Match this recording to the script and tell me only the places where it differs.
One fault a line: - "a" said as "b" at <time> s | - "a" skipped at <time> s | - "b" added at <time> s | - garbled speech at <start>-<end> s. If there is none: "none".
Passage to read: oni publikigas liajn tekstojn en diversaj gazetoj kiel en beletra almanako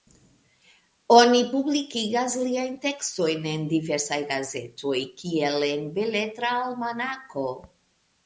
none